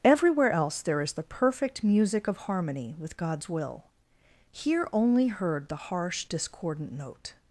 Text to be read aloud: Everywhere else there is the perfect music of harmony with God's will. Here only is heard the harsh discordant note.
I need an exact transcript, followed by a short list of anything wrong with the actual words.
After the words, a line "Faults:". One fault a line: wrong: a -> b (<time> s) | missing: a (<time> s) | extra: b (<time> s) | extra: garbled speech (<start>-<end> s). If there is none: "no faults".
Everywhere else there is the perfect music of harmony with God's will. Here only heard the harsh discordant note.
Faults:
missing: is (5.3 s)